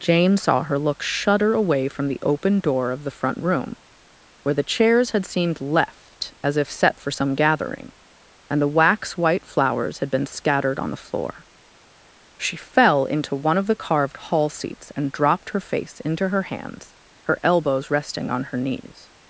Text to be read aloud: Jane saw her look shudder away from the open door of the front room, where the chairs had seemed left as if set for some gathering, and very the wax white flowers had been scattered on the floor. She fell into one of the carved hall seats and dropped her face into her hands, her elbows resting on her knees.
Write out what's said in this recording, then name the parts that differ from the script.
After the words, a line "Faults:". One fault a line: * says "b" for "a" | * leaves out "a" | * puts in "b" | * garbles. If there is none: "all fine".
Jane saw her look shudder away from the open door of the front room, where the chairs had seemed left as if set for some gathering, and the wax white flowers had been scattered on the floor. She fell into one of the carved hall seats and dropped her face into her hands, her elbows resting on her knees.
Faults:
* leaves out "very"